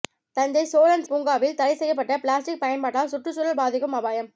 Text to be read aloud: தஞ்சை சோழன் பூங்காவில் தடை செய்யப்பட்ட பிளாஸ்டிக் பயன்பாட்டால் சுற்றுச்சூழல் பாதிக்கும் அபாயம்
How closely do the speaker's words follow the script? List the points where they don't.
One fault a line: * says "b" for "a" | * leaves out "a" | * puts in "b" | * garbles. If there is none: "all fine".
all fine